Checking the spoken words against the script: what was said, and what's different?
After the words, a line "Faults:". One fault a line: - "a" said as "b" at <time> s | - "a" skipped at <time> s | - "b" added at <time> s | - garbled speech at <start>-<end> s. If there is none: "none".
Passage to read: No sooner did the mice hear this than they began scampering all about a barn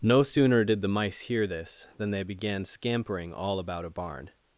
No sooner did the mice hear this than they began scampering all about a barn
Faults:
none